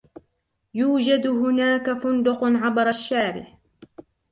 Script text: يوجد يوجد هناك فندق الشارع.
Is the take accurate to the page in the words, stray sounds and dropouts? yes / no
no